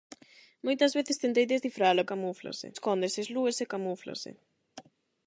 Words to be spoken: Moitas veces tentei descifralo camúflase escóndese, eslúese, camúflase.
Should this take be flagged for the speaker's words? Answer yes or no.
no